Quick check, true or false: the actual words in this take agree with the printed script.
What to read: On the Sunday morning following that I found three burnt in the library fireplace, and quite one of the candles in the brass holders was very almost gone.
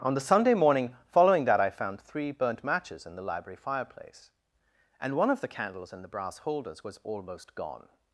false